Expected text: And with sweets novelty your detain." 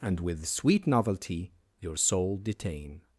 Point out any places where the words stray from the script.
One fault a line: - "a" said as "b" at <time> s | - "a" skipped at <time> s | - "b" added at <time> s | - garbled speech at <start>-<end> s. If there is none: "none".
- "sweets" said as "sweet" at 0.5 s
- "soul" added at 2.0 s